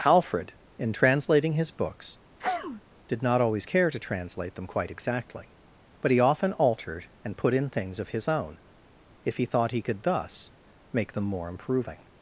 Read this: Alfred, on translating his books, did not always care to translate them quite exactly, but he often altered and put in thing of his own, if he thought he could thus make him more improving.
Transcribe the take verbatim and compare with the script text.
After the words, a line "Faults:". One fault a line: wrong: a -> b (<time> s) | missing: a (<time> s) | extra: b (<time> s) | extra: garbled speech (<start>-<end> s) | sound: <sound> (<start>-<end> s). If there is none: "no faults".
Alfred, in translating his books, did not always care to translate them quite exactly, but he often altered and put in things of his own, if he thought he could thus make them more improving.
Faults:
wrong: on -> in (0.8 s)
sound: sneeze (2.4-2.8 s)
wrong: thing -> things (7.7 s)
wrong: him -> them (11.1 s)